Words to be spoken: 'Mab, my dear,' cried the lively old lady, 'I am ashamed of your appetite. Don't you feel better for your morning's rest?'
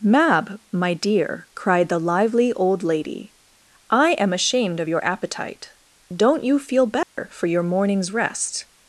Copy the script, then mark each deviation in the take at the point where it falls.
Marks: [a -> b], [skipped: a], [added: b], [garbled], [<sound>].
'Mab, my dear,' cried the lively old lady, 'I am ashamed of your appetite. Don't you feel better [dropout] for your morning's rest?'